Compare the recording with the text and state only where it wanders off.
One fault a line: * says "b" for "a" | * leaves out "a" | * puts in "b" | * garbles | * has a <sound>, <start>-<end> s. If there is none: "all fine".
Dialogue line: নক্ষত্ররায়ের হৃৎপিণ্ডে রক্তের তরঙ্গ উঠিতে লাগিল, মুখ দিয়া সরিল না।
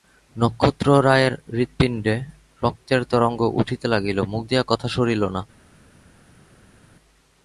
* puts in "কথা"